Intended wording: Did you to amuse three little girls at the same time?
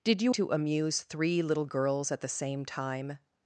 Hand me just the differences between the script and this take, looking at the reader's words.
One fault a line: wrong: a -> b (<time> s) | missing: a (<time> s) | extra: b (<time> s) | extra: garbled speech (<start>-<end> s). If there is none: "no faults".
no faults